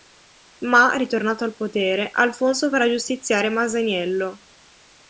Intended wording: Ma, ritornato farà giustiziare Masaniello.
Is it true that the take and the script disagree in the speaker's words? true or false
true